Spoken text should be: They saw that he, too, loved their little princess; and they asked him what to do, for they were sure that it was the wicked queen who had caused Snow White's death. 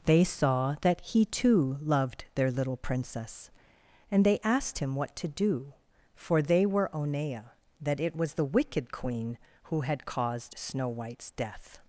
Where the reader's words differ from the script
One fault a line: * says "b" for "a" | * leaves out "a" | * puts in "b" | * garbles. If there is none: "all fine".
* says "onea" for "sure"